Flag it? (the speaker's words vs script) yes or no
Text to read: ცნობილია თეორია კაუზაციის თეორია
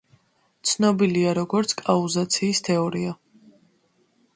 yes